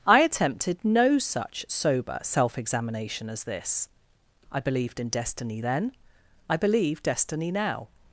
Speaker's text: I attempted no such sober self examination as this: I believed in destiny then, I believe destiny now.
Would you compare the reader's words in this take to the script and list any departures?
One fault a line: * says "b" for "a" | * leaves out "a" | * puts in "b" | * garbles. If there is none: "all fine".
all fine